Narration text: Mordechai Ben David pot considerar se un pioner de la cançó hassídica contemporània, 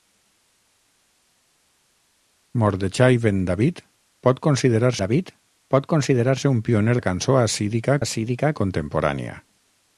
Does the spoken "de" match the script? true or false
false